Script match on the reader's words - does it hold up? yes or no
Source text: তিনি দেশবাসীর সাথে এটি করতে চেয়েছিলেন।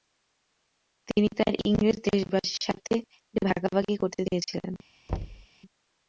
no